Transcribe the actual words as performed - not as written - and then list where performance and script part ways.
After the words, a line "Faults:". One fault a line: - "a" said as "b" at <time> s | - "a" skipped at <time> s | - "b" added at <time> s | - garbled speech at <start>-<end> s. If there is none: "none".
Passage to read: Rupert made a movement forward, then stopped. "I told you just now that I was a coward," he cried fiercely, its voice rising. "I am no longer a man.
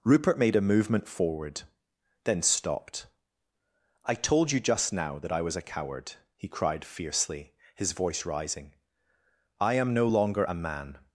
Rupert made a movement forward, then stopped. "I told you just now that I was a coward," he cried fiercely, his voice rising. "I am no longer a man.
Faults:
- "its" said as "his" at 7.8 s